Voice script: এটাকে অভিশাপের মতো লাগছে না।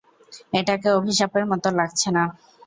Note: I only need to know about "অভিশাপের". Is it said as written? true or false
true